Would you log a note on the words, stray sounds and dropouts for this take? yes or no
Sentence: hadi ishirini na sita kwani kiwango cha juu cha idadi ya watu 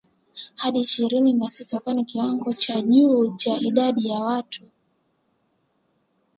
no